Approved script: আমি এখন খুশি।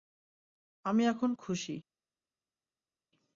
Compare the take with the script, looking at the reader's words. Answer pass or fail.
pass